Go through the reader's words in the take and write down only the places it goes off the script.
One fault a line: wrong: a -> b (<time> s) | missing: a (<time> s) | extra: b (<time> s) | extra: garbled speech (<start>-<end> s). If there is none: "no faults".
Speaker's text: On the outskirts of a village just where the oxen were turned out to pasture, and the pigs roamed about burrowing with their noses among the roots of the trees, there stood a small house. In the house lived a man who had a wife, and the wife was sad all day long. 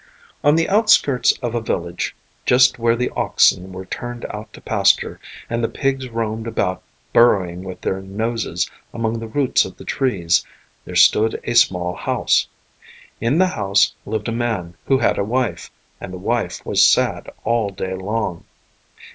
no faults